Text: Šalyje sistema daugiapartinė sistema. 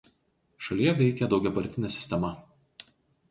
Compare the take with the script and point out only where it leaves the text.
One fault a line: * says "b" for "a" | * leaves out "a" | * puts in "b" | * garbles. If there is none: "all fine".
* says "veikia" for "sistema"